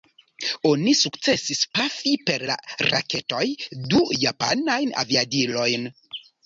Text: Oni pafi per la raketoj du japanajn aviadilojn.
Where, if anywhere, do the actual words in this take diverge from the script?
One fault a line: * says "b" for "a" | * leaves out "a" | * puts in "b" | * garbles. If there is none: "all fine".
* puts in "sukcesis"